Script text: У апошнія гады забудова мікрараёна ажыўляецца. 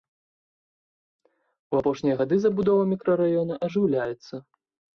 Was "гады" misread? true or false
false